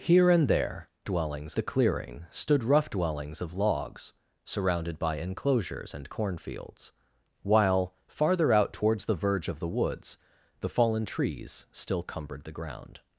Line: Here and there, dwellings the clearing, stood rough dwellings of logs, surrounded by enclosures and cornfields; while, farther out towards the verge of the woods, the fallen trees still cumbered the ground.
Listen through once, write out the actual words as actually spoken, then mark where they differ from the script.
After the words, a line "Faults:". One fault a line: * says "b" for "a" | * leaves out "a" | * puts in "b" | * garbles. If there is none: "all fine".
Here and there, dwellings the clearing, stood rough dwellings of logs, surrounded by enclosures and cornfields; while, farther out towards the verge of the woods, the fallen trees still cumbered the ground.
Faults:
all fine